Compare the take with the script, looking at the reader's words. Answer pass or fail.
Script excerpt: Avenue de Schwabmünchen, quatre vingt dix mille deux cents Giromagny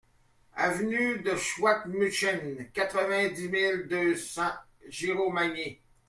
pass